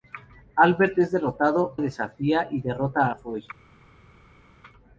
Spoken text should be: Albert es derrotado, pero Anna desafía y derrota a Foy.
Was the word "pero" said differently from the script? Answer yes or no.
yes